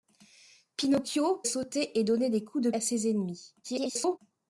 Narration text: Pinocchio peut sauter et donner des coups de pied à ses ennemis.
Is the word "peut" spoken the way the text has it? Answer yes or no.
no